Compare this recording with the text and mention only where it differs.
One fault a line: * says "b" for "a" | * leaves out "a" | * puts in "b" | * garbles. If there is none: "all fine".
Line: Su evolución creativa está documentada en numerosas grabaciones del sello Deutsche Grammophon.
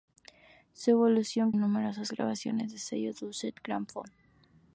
* leaves out "creativa está documentada"